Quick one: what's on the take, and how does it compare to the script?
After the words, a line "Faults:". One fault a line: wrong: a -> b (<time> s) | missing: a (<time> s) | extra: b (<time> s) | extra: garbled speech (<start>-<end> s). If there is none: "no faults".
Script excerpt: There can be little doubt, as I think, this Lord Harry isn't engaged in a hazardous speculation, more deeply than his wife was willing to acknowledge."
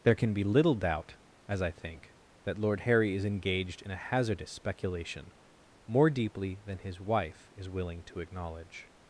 There can be little doubt, as I think, that Lord Harry is engaged in a hazardous speculation, more deeply than his wife is willing to acknowledge."
Faults:
wrong: this -> that (2.4 s)
wrong: isn't -> is (3.1 s)
wrong: was -> is (7.6 s)